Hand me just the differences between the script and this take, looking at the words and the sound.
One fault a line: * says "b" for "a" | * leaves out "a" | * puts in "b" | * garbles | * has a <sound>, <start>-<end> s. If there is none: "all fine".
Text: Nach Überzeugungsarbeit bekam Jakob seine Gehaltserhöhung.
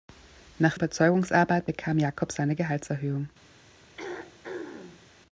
* has a throat clearing, 4.0-5.1 s